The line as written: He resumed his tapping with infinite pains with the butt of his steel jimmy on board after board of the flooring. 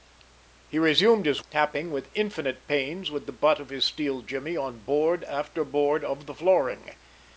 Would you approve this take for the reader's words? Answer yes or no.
yes